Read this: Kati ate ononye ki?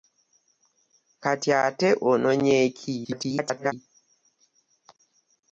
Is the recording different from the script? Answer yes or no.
yes